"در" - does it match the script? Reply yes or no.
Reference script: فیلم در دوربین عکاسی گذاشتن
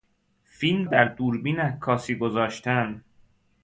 yes